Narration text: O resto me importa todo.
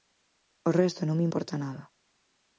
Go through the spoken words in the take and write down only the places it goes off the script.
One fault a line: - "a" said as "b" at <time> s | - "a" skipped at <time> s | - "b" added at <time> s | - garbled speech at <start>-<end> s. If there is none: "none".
- "non" added at 1.1 s
- "todo" said as "nada" at 1.6 s